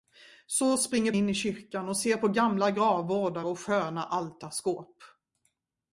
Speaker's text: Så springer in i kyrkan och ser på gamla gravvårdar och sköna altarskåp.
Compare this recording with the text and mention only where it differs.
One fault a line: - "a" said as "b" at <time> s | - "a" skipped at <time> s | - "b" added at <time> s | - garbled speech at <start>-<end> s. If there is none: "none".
none